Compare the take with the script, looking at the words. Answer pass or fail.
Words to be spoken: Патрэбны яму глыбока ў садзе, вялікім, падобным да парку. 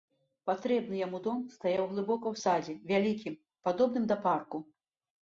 fail